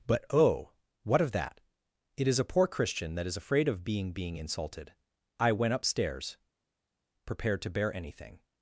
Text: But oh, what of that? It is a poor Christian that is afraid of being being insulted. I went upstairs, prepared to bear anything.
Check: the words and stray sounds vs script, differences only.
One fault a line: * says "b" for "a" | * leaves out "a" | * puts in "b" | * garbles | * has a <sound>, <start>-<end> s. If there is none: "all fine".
all fine